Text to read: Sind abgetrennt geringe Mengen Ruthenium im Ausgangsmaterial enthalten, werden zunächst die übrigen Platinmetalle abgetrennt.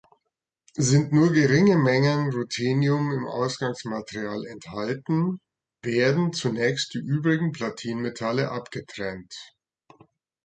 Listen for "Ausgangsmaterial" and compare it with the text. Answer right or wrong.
right